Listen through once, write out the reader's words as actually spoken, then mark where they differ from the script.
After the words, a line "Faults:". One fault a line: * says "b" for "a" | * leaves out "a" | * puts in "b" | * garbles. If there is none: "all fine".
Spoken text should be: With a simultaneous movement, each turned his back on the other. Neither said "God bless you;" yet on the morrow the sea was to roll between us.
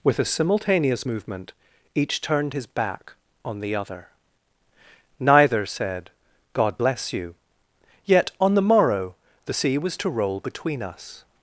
With a simultaneous movement, each turned his back on the other. Neither said "God bless you;" yet on the morrow the sea was to roll between us.
Faults:
all fine